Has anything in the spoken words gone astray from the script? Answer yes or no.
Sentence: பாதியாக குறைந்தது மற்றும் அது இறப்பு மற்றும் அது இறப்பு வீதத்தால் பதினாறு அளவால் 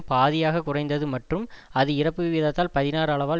yes